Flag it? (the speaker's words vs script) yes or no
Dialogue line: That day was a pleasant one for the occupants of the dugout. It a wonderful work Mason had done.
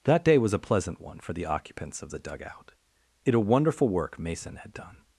no